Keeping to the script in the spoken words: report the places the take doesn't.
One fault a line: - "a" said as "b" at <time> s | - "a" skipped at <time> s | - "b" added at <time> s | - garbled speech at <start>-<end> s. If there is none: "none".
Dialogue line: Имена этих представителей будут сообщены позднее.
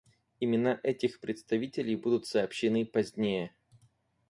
none